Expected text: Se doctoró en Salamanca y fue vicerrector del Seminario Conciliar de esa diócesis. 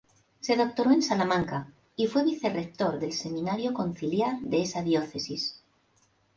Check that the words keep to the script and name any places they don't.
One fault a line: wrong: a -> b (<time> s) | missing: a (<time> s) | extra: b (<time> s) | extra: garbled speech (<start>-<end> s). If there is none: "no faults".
no faults